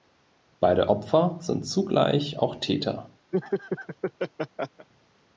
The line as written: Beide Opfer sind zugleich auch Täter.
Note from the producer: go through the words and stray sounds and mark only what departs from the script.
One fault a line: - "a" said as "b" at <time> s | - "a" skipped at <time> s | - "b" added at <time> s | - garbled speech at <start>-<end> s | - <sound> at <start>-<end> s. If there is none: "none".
- laugh at 3.3-4.9 s